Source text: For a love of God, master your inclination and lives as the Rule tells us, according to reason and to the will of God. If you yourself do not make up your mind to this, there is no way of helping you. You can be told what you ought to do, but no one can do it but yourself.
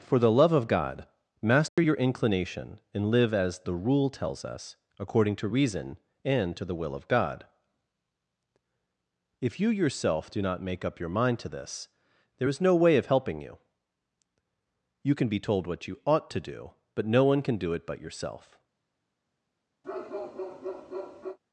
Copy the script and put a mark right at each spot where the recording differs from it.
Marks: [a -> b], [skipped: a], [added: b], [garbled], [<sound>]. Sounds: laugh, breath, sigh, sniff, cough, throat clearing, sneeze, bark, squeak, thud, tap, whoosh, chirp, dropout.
For [a -> the] love of God, master [dropout] your inclination and [lives -> live] as the Rule tells us, according to reason and to the will of God. If you yourself do not make up your mind to this, there is no way of helping you. You can be told what you ought to do, but no one can do it but yourself. [bark]